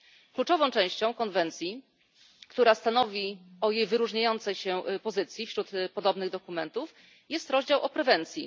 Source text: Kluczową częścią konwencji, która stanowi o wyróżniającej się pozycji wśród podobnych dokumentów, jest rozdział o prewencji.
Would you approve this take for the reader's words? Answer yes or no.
no